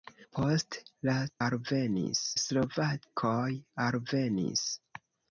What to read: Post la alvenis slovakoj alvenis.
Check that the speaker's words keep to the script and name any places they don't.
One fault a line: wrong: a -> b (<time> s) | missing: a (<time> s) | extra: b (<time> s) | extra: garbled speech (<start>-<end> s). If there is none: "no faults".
no faults